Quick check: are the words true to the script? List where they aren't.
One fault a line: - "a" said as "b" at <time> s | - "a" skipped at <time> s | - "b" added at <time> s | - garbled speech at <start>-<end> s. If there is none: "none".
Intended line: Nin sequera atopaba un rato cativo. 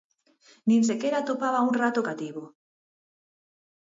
none